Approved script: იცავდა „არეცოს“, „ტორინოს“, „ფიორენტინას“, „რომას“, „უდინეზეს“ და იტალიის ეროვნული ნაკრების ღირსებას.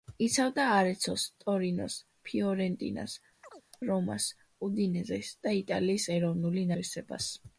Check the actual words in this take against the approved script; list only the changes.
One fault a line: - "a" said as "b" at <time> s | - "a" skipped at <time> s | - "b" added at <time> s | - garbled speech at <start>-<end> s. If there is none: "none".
- "ნაკრების" skipped at 6.7 s